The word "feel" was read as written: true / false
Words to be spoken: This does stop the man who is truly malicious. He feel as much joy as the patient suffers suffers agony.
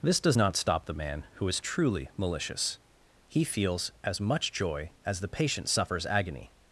false